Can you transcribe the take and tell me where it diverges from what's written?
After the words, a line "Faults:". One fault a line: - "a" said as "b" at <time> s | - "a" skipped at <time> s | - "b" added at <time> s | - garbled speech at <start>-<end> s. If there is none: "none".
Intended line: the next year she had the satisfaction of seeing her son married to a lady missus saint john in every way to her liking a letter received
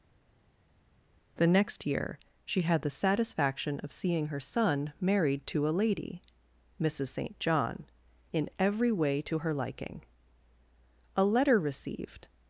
the next year she had the satisfaction of seeing her son married to a lady missus saint john in every way to her liking a letter received
Faults:
none